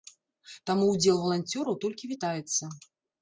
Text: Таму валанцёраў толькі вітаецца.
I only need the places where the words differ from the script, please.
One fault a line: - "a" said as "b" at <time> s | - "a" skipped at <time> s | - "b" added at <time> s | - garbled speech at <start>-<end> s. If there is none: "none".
- "ўдзел" added at 0.9 s